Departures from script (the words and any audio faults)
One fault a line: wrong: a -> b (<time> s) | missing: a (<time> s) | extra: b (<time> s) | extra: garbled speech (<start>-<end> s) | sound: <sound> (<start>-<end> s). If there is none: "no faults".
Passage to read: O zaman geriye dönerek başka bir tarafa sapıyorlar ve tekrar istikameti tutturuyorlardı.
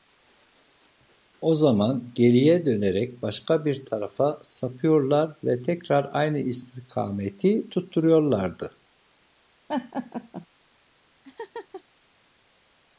extra: aynı (6.1 s)
sound: laugh (9.7-10.5 s)
sound: laugh (11.2-11.8 s)